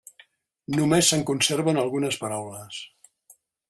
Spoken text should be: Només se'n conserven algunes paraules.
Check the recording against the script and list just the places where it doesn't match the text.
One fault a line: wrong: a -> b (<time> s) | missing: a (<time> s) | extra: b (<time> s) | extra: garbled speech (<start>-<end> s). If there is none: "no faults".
no faults